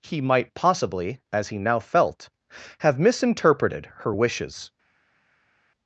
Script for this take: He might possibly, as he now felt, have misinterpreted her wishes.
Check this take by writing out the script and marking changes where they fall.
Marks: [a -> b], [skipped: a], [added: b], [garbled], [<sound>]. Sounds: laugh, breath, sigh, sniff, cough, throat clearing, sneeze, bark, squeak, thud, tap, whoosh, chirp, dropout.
He might possibly, as he now felt, have misinterpreted her wishes.